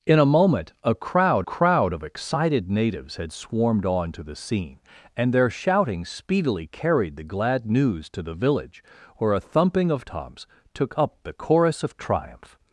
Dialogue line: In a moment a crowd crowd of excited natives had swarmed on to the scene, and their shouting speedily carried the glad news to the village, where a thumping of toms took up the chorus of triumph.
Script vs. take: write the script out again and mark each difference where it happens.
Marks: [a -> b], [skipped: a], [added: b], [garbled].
In a moment a crowd crowd of excited natives had swarmed on to the scene, and their shouting speedily carried the glad news to the village, where a thumping of toms took up the chorus of triumph.